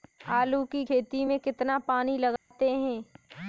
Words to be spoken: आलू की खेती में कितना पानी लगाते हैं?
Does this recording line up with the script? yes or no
yes